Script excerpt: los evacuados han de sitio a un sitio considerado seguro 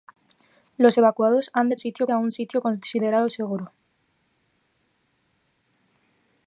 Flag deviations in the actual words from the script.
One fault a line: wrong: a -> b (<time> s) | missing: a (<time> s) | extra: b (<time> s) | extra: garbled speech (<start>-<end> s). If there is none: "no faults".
no faults